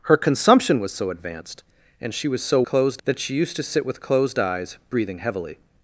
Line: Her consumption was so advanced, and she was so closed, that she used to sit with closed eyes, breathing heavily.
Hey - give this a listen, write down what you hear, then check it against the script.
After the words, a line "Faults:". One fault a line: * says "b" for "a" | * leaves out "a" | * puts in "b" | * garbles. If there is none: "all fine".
Her consumption was so advanced, and she was so closed, that she used to sit with closed eyes, breathing heavily.
Faults:
all fine